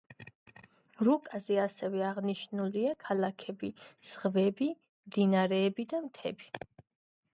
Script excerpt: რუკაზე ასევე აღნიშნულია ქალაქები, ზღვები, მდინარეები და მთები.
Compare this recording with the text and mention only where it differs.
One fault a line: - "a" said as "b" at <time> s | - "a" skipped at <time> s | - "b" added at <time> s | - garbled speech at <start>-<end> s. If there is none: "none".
none